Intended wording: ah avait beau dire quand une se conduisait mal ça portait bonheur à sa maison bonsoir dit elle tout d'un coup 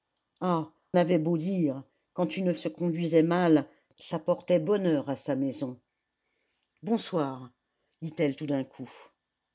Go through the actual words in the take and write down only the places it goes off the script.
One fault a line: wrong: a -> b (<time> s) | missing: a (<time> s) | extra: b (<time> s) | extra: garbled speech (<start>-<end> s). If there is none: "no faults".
no faults